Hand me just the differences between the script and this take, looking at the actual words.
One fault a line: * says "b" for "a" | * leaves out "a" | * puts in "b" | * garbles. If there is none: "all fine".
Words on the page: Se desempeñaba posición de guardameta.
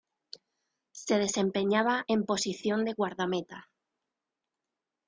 * puts in "en"